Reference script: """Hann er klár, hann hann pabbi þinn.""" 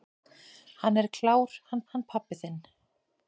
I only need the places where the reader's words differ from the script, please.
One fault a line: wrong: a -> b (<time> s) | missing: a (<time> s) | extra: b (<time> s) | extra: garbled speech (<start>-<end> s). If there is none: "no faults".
no faults